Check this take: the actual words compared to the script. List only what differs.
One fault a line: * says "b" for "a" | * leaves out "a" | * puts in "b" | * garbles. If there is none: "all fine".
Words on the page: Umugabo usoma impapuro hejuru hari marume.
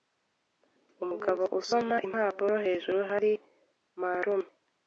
all fine